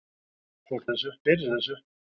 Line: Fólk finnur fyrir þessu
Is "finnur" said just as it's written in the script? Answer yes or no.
no